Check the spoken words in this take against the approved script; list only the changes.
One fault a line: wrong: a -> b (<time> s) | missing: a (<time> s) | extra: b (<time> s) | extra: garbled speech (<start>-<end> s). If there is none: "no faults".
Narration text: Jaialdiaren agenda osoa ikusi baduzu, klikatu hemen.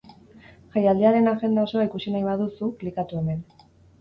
extra: nahi (2.2 s)